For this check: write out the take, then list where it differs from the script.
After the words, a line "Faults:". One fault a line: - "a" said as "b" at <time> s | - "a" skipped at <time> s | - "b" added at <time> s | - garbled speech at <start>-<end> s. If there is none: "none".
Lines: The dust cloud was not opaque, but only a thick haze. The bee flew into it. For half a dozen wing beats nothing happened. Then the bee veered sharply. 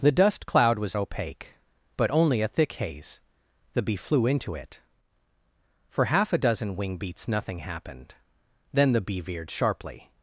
The dust cloud was opaque, but only a thick haze. The bee flew into it. For half a dozen wing beats nothing happened. Then the bee veered sharply.
Faults:
- "not" skipped at 0.9 s